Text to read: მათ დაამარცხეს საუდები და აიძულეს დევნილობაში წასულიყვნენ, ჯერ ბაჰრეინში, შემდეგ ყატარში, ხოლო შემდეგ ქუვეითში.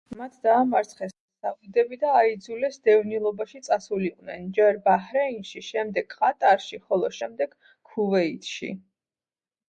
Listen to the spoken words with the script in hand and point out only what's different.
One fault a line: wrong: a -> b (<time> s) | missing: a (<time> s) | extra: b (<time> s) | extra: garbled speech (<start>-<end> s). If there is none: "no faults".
no faults